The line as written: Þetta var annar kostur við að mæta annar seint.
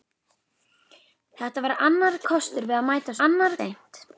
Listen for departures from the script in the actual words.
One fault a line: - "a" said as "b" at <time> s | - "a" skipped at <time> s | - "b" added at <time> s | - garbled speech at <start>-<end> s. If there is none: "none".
none